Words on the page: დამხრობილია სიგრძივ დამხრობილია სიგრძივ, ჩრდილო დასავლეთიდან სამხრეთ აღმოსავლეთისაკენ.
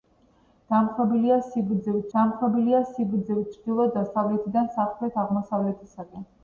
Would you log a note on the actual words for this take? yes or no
no